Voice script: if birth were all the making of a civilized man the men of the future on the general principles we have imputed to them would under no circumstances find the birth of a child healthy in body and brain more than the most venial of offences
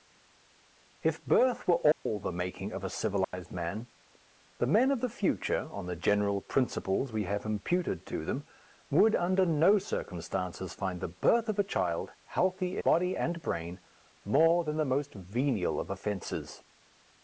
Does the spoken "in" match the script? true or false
false